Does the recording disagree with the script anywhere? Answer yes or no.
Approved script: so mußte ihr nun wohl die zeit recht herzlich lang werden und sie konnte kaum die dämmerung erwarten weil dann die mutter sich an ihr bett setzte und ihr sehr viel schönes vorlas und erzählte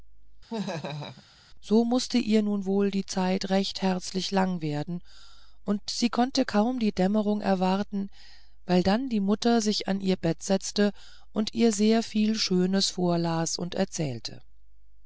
no